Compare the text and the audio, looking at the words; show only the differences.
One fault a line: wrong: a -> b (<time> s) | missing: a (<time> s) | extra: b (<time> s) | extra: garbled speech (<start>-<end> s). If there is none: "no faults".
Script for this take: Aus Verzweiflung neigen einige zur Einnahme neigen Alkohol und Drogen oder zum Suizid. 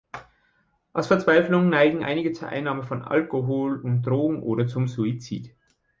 wrong: neigen -> von (2.8 s)